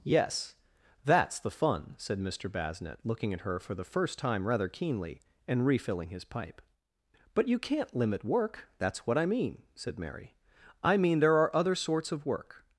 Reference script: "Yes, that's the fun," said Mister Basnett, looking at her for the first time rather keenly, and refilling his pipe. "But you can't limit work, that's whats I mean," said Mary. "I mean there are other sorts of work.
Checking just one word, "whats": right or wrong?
wrong